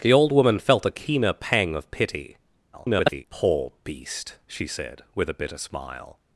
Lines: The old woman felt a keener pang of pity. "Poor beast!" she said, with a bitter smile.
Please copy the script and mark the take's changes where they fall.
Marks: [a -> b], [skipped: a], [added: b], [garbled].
The old woman felt a keener pang of pity. [garbled] "Poor beast!" she said, with a bitter smile.